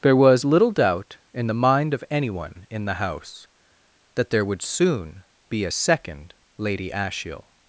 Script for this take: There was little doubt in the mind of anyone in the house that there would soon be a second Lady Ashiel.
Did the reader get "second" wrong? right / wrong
right